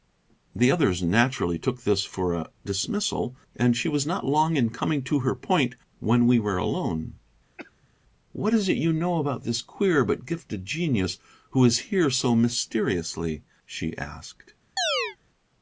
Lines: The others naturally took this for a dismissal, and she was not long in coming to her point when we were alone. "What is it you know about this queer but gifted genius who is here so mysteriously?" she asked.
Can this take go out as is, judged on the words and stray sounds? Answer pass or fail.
fail